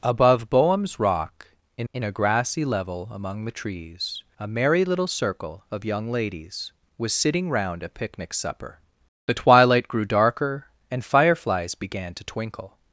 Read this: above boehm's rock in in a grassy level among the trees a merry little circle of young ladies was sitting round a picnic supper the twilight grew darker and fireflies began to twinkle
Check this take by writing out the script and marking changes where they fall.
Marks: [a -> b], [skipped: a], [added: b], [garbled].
above boehm's rock in in a grassy level among the trees a merry little circle of young ladies was sitting round a picnic supper the twilight grew darker and fireflies began to twinkle